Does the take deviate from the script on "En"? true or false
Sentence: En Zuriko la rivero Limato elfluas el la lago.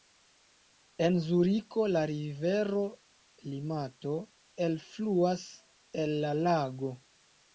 false